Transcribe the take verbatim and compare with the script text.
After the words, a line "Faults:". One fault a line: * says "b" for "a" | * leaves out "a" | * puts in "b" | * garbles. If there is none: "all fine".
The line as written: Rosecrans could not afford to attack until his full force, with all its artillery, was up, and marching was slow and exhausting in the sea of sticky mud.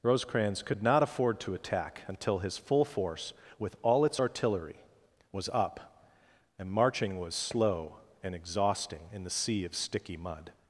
Rosecrans could not afford to attack until his full force, with all its artillery, was up, and marching was slow and exhausting in the sea of sticky mud.
Faults:
all fine